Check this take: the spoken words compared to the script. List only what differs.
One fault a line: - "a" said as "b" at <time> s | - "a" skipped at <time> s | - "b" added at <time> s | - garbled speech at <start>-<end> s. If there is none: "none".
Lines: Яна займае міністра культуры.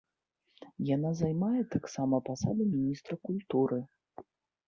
- "таксама пасаду" added at 1.8 s